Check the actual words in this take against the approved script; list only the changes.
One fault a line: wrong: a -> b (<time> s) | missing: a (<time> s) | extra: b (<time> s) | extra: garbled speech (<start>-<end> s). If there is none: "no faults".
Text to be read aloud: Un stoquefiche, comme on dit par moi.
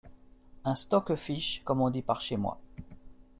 extra: chez (2.2 s)